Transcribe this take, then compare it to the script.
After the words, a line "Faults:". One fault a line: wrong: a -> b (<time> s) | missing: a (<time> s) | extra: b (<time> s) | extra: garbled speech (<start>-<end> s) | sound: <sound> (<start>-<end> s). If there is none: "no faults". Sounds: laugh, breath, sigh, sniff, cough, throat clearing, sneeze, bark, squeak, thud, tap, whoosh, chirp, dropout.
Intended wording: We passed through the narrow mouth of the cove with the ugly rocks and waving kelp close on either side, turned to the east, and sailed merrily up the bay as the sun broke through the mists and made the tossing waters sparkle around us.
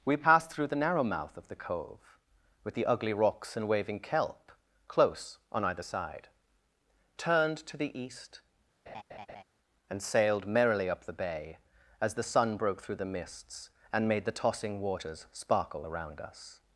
We passed through the narrow mouth of the cove with the ugly rocks and waving kelp close on either side, turned to the east, and sailed merrily up the bay as the sun broke through the mists and made the tossing waters sparkle around us.
Faults:
sound: laugh (8.9-9.4 s)